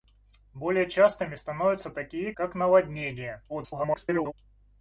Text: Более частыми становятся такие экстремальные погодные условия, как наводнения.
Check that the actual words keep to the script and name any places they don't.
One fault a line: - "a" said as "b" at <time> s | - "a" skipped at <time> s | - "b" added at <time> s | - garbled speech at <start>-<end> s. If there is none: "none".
- "экстремальные погодные условия" skipped at 2.3 s
- garbled speech at 3.5-4.3 s